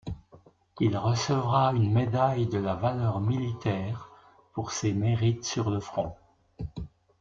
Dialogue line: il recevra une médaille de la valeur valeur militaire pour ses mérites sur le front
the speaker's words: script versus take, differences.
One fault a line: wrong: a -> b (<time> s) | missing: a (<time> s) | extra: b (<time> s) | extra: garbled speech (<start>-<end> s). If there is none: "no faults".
missing: valeur (3.2 s)